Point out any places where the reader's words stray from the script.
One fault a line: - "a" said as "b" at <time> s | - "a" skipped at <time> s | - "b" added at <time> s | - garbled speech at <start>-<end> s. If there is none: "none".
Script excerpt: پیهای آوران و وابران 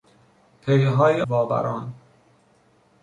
- "آوران و" skipped at 1.2 s